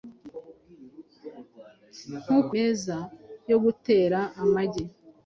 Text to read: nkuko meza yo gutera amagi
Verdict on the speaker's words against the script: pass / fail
pass